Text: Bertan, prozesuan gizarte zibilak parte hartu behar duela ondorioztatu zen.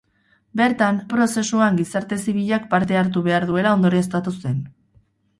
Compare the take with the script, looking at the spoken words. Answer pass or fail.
pass